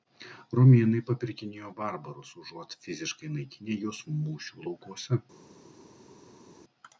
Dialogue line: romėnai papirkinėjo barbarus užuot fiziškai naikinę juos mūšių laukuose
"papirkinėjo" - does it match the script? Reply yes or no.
yes